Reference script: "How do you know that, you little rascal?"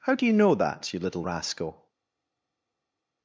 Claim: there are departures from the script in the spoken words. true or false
false